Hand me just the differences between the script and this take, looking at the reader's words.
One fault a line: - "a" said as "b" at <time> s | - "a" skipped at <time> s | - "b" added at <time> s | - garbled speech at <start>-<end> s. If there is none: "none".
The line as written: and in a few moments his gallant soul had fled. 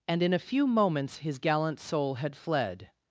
none